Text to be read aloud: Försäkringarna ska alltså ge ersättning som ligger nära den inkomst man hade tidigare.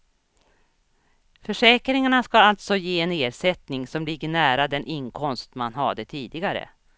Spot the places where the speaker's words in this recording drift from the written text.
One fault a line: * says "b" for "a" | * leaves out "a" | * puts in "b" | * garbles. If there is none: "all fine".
* puts in "en"